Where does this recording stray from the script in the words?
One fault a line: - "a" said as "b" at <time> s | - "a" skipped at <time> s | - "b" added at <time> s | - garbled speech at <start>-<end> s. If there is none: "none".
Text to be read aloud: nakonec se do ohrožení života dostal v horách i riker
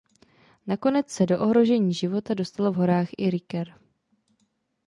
none